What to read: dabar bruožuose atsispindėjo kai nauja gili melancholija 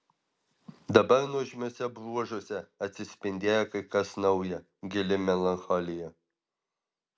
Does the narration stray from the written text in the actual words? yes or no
yes